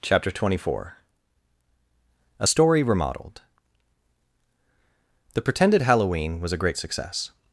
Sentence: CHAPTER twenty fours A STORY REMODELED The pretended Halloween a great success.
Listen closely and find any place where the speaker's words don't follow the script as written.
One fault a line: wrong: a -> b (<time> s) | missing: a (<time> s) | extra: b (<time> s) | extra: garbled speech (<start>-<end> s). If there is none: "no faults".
wrong: fours -> four (0.7 s)
extra: was (6.4 s)